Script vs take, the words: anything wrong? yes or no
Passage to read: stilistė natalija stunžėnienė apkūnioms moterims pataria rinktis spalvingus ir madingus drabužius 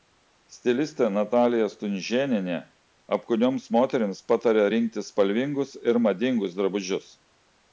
no